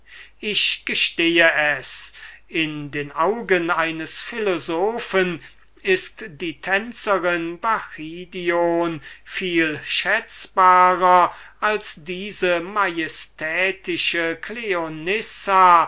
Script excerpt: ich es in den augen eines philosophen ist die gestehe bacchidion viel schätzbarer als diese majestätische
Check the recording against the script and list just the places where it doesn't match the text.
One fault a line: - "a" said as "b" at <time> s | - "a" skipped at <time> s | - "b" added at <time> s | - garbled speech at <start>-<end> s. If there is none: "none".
- "gestehe" added at 0.8 s
- "gestehe" said as "tänzerin" at 6.6 s